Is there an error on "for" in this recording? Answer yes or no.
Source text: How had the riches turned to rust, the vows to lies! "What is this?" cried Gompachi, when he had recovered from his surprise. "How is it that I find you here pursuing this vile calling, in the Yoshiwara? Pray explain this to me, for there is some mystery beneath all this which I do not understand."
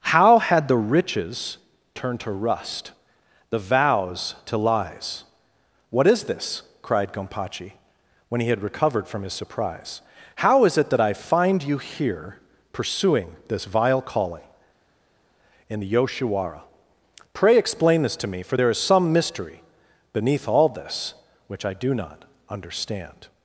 no